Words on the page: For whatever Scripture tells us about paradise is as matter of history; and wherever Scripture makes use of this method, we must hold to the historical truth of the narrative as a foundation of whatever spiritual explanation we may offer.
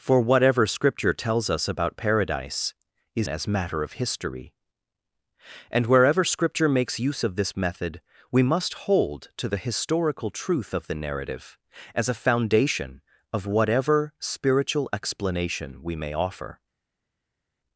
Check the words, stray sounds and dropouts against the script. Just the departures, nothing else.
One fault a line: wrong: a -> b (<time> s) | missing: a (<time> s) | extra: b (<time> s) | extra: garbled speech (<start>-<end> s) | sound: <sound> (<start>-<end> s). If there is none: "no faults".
no faults